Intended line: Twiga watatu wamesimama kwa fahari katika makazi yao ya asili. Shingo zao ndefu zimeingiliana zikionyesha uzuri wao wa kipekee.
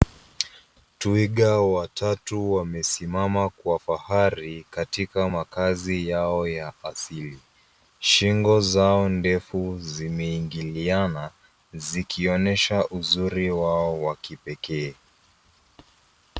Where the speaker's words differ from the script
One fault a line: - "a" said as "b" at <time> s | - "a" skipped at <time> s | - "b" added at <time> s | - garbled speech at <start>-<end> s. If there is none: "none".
none